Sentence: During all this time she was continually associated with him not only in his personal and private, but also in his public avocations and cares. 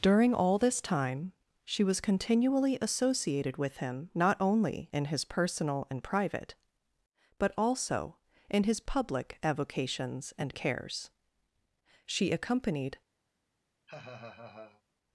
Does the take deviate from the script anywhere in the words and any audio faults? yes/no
yes